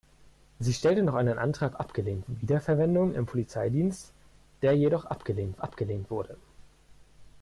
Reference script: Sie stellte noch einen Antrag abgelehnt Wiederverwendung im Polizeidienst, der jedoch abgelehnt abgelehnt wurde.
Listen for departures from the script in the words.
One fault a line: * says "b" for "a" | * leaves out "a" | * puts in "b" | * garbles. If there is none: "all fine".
all fine